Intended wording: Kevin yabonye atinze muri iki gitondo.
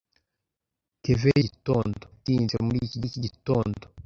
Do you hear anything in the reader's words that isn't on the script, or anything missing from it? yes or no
yes